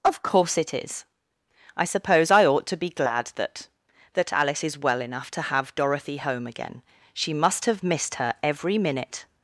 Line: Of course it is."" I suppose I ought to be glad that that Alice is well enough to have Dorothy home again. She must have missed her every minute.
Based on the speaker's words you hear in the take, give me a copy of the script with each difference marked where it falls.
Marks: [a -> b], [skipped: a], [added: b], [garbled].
Of course it is."" I suppose I ought to be glad that that Alice is well enough to have Dorothy home again. She must have missed her every minute.